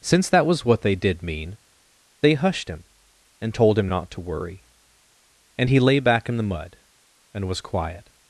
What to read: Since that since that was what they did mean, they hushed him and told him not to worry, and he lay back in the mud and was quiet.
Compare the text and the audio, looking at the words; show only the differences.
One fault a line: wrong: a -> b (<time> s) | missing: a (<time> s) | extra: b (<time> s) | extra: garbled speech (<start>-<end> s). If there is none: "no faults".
missing: since that (0.5 s)